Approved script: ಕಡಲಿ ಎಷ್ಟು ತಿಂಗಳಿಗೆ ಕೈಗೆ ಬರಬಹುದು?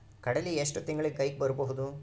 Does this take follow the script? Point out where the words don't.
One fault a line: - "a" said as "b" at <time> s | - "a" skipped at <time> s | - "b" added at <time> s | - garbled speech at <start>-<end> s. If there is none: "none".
none